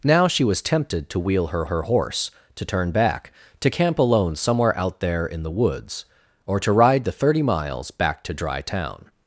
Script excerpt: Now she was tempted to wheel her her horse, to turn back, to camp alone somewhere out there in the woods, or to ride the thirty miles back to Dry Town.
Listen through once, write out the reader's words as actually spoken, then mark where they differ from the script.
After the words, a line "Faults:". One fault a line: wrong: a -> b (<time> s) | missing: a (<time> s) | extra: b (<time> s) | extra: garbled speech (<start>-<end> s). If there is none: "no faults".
Now she was tempted to wheel her her horse, to turn back, to camp alone somewhere out there in the woods, or to ride the thirty miles back to Dry Town.
Faults:
no faults